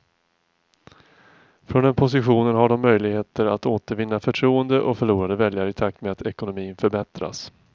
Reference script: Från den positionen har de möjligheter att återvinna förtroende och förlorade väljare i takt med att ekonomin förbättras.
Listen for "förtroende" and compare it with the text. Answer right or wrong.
right